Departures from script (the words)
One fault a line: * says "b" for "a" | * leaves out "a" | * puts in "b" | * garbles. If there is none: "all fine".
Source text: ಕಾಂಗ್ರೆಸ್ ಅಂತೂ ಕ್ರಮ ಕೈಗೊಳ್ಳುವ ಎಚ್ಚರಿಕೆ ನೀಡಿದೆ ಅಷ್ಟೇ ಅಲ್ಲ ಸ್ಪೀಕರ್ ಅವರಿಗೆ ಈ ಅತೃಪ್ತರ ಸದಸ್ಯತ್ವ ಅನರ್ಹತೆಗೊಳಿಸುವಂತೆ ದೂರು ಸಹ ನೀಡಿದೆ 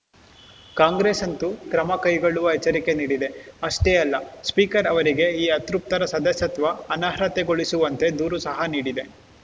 all fine